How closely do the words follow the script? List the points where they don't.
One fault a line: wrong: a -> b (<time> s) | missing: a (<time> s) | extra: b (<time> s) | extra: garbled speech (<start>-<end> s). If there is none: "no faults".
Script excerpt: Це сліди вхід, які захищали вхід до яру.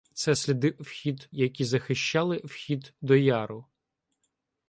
no faults